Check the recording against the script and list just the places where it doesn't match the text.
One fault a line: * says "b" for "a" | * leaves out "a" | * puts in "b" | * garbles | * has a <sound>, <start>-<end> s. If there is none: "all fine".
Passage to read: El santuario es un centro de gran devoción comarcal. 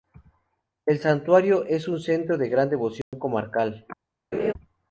* has a dropout, 3.0-3.1 s
* has a laugh, 4.3-4.5 s